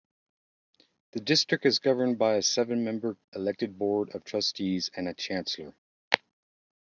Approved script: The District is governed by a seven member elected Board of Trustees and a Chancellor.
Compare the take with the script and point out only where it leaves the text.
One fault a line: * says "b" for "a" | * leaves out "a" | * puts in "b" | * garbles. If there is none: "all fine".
all fine